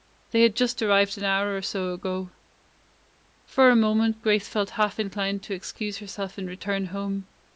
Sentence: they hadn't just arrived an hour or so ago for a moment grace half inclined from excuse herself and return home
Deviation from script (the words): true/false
true